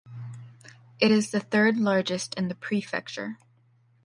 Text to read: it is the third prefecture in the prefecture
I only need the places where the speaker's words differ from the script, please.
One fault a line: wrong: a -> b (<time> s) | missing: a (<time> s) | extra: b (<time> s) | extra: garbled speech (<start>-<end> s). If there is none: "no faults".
wrong: prefecture -> largest (1.8 s)